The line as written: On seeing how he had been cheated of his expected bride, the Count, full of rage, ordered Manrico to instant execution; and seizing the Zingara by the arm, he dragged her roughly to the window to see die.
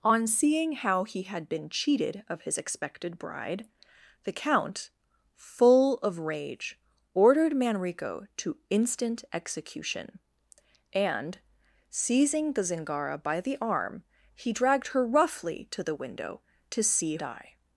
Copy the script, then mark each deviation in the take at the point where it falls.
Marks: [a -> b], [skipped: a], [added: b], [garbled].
On seeing how he had been cheated of his expected bride, the Count, full of rage, ordered Manrico to instant execution; and seizing the Zingara by the arm, he dragged her roughly to the window to see die.